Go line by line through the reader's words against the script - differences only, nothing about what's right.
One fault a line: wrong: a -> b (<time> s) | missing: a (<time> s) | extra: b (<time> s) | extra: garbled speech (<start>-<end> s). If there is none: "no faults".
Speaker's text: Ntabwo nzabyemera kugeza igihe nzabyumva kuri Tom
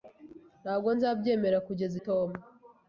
missing: igihe nzabyumva kuri (1.9 s)